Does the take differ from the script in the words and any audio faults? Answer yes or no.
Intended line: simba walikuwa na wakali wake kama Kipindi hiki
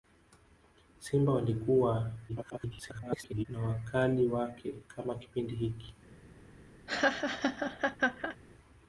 yes